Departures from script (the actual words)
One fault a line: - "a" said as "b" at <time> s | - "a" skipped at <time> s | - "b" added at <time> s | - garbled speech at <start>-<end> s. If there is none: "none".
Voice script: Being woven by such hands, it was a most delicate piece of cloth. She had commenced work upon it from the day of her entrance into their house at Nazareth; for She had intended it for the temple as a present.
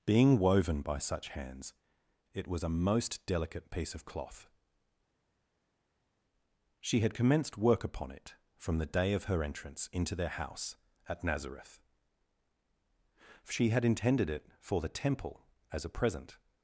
- "for" skipped at 11.8 s